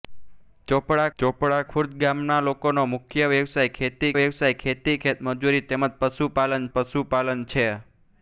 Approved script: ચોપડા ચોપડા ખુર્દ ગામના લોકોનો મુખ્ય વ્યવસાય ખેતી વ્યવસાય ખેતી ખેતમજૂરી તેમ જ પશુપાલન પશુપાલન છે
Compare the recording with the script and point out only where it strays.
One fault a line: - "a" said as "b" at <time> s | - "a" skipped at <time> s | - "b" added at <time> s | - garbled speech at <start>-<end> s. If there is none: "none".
none